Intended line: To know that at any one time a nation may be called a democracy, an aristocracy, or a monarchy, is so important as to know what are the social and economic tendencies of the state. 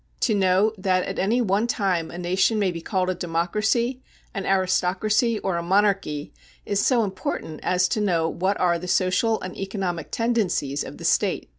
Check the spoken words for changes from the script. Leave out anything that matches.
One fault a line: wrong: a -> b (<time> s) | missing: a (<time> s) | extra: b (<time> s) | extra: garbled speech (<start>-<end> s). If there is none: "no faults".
no faults